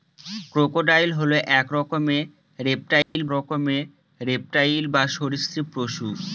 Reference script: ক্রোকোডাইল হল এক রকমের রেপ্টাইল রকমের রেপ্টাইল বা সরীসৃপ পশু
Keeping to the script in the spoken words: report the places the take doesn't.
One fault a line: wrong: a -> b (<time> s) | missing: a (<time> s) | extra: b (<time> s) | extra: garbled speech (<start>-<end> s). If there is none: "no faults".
no faults